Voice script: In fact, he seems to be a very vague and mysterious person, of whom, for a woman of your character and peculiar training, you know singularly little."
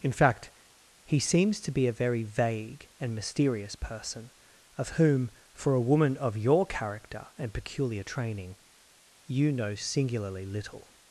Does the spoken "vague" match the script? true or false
true